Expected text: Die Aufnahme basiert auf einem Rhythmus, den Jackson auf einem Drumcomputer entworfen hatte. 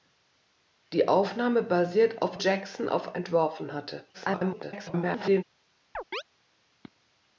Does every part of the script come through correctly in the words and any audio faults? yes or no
no